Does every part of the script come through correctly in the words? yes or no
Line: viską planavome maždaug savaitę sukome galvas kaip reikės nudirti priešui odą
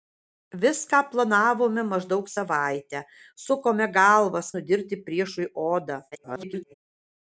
no